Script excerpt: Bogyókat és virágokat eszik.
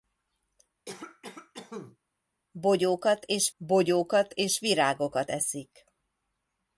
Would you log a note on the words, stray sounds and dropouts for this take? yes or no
yes